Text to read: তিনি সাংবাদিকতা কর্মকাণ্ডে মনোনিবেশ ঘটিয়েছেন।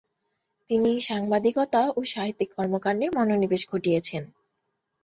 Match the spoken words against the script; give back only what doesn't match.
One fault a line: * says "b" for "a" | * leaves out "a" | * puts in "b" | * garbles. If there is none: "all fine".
* puts in "ও সাহিত্যিক"